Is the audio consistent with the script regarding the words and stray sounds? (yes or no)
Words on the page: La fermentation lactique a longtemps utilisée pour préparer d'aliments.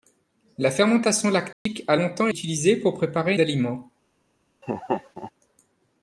no